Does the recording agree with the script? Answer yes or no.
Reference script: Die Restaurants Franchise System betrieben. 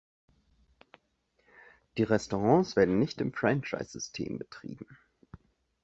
no